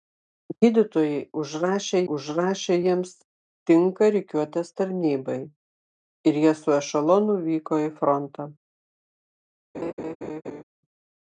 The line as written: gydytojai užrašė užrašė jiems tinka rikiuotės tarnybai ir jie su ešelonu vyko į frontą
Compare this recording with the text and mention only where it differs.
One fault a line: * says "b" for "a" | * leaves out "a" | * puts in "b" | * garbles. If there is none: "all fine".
all fine